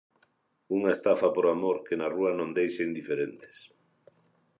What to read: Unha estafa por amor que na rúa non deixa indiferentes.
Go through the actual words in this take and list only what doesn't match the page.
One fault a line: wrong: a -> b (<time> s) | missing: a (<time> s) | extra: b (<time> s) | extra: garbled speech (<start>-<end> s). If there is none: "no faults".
no faults